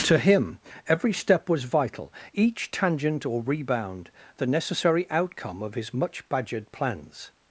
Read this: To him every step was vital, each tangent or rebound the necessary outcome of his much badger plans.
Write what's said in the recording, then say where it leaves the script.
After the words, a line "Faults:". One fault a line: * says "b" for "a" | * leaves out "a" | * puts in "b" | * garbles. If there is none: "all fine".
To him every step was vital, each tangent or rebound the necessary outcome of his much badgered plans.
Faults:
* says "badgered" for "badger"